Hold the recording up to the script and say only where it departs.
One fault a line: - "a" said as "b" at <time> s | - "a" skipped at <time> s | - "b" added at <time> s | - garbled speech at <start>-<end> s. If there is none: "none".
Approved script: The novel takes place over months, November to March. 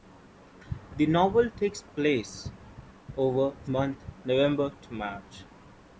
none